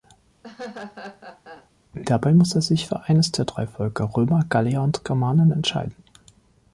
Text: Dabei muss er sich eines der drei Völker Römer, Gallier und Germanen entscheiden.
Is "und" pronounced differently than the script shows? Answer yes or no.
no